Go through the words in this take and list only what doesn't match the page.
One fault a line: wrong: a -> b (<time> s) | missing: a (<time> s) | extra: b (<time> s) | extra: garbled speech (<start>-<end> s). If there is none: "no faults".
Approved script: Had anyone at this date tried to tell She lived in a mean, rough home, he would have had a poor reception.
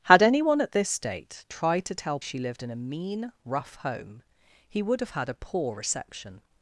no faults